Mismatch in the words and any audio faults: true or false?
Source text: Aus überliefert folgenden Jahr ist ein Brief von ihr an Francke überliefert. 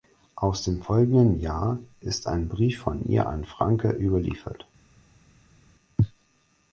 true